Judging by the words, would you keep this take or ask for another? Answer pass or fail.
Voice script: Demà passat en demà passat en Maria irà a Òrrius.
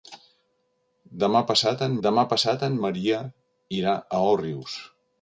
pass